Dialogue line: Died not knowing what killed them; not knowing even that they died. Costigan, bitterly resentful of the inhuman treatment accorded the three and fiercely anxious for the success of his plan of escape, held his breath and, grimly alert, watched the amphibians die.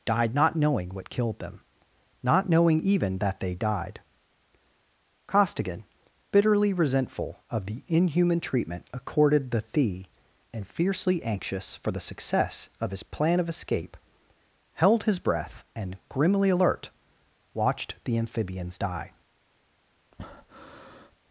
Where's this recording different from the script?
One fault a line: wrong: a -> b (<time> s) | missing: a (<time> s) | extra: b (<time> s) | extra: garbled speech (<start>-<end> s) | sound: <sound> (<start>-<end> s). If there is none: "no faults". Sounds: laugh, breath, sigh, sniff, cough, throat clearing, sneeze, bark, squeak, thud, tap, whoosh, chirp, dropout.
wrong: three -> thee (9.7 s)
sound: breath (20.1-21.1 s)